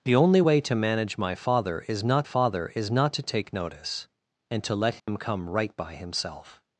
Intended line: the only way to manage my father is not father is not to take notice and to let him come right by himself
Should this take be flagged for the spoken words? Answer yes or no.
no